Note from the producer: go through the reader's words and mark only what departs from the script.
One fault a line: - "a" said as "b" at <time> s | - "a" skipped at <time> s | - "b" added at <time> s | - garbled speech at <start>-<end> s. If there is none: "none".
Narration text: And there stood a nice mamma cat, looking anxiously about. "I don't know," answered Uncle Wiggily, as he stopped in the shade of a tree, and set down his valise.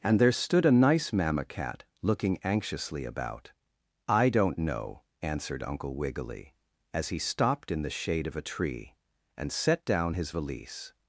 none